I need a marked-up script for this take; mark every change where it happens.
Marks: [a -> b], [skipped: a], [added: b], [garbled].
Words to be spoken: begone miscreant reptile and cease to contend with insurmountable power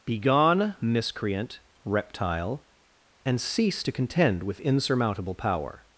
begone miscreant reptile and cease to contend with insurmountable power